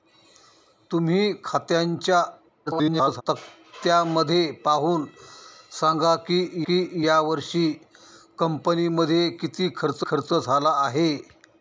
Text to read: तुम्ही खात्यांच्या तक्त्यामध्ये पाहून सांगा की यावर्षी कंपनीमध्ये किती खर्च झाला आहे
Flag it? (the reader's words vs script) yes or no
yes